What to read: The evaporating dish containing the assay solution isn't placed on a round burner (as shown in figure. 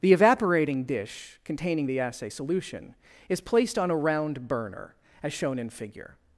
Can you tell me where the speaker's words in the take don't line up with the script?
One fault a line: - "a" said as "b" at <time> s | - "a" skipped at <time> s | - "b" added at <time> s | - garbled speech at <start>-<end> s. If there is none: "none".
- "isn't" said as "is" at 3.3 s